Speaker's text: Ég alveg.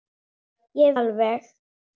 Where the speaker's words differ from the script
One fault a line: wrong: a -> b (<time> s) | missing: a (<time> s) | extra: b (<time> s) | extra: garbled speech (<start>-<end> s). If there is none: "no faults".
no faults